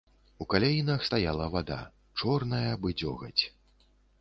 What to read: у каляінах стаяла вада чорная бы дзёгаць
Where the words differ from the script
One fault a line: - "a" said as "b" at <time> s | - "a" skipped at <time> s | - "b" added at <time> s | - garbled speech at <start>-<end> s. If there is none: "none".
none